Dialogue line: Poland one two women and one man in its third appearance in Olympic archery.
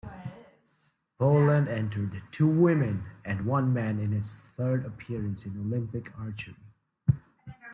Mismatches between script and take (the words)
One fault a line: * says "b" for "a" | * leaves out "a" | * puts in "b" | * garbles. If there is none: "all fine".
* says "entered" for "one"